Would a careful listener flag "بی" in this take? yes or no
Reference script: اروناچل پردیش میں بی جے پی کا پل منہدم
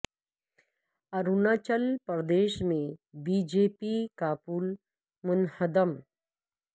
no